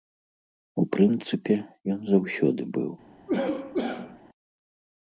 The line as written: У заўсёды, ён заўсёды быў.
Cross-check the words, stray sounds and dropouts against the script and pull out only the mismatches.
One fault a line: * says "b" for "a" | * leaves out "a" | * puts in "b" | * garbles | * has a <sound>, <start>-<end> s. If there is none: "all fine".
* says "прынцыпе" for "заўсёды"
* has a cough, 3.3-4.2 s